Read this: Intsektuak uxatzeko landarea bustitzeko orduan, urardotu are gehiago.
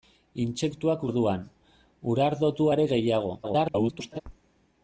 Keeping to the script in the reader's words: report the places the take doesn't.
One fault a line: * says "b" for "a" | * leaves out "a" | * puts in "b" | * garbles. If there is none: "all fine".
* leaves out "uxatzeko landarea bustitzeko"
* garbles